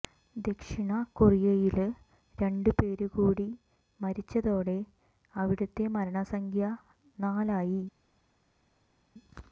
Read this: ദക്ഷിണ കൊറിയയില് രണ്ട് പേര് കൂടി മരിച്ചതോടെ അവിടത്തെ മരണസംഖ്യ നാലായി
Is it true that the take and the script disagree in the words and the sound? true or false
false